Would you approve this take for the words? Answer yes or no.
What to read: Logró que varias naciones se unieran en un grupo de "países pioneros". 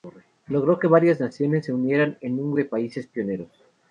no